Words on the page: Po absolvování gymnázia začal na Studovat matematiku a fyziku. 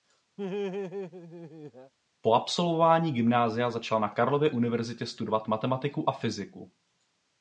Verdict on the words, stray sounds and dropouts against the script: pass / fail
fail